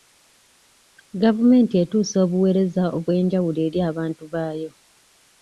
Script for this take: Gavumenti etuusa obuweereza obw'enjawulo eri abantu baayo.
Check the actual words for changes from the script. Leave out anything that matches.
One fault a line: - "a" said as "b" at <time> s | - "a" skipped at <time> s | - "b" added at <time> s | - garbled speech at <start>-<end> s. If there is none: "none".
none